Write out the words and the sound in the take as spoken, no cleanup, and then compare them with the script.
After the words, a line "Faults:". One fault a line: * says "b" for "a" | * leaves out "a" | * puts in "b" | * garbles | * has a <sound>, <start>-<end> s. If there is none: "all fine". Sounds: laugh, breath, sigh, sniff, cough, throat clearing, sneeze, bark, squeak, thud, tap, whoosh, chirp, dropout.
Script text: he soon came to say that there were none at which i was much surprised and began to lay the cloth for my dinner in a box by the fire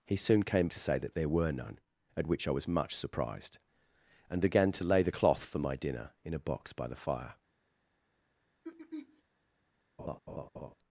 he soon came to say that there were none at which i was much surprised and began to lay the cloth for my dinner in a box by the fire
Faults:
* has a throat clearing, 8.6-9.2 s
* has a laugh, 10.0-10.7 s